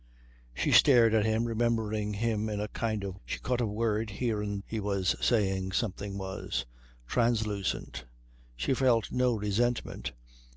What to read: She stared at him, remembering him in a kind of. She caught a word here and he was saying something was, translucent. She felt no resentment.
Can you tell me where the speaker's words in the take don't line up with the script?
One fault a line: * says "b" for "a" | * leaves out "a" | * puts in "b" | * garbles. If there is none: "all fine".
all fine